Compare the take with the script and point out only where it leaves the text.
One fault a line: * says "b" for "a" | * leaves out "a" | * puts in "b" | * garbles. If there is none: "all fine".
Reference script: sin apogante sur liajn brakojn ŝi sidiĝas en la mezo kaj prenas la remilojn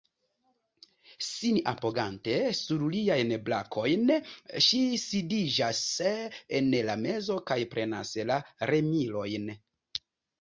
all fine